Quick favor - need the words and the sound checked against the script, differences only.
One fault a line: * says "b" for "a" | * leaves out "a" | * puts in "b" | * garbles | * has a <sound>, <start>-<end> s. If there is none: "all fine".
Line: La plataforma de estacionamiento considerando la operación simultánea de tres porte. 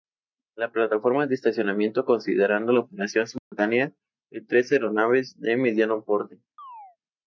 * has a dropout, 3.4-3.5 s
* puts in "aeronaves de mediano"
* has a chirp, 6.6-7.0 s